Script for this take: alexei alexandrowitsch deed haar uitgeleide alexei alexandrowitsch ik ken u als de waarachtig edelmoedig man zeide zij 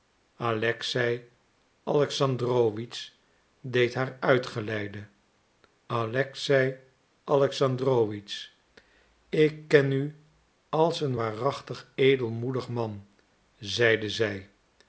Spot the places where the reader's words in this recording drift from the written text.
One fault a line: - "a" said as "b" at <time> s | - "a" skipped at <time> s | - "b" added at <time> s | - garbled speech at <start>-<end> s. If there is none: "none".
- "de" said as "een" at 11.0 s